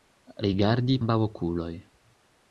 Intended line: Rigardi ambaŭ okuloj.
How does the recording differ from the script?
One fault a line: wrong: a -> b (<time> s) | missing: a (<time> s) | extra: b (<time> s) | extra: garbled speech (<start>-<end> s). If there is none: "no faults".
no faults